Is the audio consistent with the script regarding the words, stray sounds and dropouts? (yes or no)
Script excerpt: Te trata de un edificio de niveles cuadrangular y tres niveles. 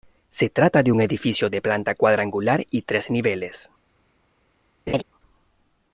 no